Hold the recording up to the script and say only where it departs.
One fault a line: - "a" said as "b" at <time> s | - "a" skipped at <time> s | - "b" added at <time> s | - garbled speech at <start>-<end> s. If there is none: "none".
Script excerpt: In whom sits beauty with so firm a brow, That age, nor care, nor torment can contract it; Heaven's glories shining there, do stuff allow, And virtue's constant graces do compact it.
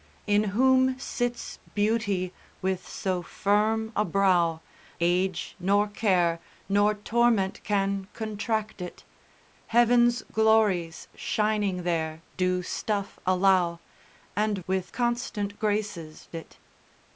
- "That" skipped at 4.6 s
- "virtue's" said as "with" at 14.6 s
- "do compact" skipped at 16.3 s